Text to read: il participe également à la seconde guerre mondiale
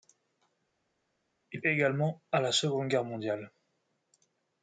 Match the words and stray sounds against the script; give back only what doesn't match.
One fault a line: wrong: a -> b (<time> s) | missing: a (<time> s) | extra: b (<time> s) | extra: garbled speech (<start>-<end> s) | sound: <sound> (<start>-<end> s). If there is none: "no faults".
missing: participe (1.6 s)